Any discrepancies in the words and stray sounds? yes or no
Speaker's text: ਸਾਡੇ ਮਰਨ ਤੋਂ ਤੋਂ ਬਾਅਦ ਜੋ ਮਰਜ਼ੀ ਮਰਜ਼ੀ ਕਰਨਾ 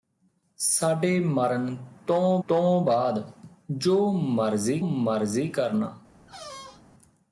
yes